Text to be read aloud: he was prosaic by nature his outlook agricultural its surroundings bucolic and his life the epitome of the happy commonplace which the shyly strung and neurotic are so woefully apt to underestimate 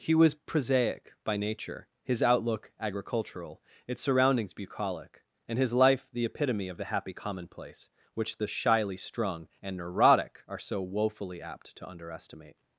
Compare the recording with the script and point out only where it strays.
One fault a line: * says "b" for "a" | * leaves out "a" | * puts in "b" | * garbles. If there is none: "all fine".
all fine